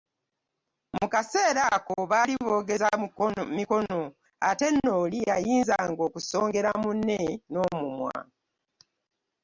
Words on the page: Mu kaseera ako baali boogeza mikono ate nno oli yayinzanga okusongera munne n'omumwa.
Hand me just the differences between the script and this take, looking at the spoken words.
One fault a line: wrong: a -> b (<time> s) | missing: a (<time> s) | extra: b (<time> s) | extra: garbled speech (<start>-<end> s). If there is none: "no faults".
no faults